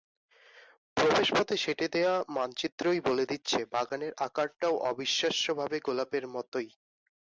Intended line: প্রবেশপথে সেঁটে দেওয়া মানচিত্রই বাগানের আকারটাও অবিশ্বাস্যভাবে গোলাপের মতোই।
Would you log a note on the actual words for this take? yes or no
yes